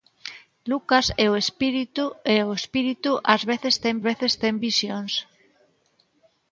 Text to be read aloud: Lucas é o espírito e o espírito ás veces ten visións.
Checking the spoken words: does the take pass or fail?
fail